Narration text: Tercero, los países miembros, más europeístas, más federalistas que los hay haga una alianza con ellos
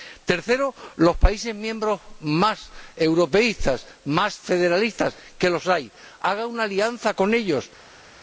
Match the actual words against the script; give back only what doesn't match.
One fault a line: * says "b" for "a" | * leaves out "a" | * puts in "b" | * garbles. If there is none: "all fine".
all fine